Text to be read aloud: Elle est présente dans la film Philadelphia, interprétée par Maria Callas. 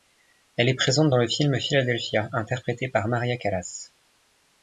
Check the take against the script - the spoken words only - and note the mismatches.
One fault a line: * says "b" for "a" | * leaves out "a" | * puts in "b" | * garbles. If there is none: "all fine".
* says "le" for "la"